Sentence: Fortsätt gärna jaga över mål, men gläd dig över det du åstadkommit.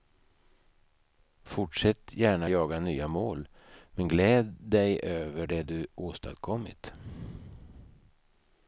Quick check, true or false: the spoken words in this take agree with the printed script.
false